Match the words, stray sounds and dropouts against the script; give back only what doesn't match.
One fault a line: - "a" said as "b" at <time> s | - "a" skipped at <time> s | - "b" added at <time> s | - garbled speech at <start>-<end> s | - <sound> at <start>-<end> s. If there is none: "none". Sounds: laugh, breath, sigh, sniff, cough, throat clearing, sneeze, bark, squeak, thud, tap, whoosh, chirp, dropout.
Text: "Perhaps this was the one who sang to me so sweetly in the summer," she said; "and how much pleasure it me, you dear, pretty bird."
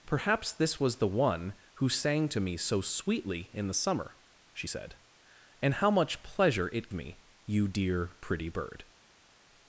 none